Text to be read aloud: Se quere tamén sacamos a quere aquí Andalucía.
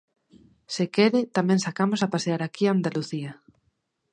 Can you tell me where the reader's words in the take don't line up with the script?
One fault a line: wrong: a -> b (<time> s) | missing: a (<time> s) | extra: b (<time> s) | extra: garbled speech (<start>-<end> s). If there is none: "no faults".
wrong: quere -> pasear (2.1 s)